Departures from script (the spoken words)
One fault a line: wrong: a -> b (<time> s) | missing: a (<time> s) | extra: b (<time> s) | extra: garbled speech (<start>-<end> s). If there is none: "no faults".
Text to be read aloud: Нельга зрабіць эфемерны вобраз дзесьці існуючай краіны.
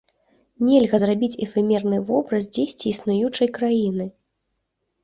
no faults